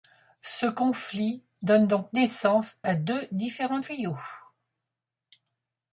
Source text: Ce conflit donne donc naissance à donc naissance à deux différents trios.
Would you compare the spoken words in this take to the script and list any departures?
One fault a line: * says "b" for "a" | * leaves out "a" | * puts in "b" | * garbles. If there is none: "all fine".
* leaves out "donc naissance à"